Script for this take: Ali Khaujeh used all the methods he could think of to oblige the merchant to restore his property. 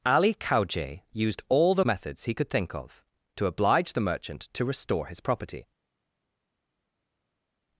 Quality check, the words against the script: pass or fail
pass